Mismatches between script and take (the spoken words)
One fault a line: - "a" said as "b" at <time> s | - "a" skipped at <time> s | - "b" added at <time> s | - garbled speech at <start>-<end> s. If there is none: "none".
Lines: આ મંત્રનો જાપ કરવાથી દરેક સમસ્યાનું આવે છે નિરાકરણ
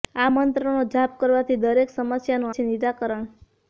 - "આવે" skipped at 2.6 s